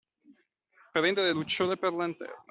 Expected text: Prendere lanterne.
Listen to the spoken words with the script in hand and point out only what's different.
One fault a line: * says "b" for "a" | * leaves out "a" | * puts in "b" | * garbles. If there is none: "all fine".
* puts in "lucciole per"